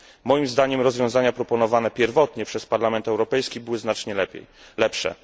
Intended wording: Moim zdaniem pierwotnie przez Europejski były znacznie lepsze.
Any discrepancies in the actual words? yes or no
yes